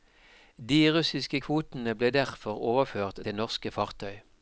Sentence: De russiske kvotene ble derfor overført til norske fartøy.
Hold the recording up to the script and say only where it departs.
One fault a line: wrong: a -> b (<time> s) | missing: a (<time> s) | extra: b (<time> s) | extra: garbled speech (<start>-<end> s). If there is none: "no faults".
no faults